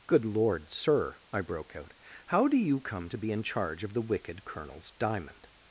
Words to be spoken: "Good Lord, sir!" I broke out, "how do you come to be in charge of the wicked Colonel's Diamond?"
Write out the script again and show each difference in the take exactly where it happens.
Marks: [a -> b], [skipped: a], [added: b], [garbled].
"Good Lord, sir!" I broke out, "how do you come to be in charge of the wicked Colonel's Diamond?"